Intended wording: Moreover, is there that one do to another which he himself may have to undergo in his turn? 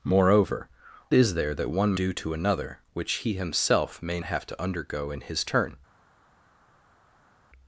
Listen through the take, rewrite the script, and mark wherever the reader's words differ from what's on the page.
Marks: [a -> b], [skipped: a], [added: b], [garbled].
Moreover, is there that one do to another which he himself may have to undergo in his turn?